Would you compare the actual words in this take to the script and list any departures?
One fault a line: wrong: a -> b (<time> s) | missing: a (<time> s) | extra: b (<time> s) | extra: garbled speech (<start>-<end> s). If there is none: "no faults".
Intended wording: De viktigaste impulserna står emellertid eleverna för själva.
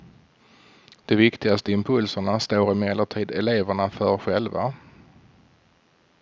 no faults